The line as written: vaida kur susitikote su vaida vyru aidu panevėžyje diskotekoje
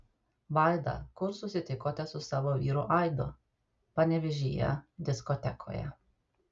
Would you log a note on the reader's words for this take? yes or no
yes